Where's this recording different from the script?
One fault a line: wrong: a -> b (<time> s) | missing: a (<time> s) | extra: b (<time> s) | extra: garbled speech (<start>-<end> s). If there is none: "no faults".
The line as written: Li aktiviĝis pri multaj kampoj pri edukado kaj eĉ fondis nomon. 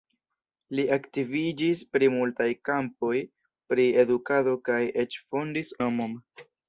no faults